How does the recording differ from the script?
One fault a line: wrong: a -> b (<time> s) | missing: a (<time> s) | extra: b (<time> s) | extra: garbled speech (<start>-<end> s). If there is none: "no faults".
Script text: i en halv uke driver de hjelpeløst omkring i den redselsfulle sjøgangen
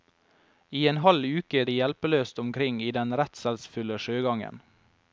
missing: driver (1.6 s)